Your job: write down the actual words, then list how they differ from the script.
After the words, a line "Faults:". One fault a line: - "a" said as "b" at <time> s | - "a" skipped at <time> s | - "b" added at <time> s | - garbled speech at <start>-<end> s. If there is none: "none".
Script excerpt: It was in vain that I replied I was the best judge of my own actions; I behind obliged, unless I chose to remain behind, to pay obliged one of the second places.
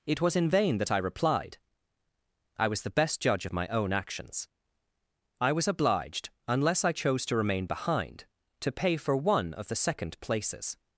It was in vain that I replied I was the best judge of my own actions; I was obliged, unless I chose to remain behind, to pay for one of the second places.
Faults:
- "behind" said as "was" at 5.5 s
- "obliged" said as "for" at 9.0 s